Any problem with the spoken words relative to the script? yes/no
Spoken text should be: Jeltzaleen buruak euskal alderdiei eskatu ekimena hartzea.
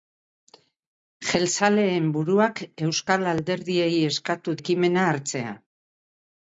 no